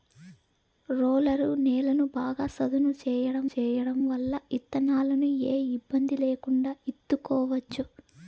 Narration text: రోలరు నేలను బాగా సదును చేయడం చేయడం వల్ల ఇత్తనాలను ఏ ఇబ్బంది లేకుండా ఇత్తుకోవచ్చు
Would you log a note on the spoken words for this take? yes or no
no